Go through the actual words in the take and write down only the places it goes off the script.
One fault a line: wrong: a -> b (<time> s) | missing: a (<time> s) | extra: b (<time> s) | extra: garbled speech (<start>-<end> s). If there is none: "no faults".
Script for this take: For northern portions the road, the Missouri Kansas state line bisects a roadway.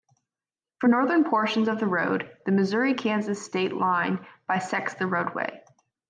extra: of (1.7 s)
wrong: a -> the (4.9 s)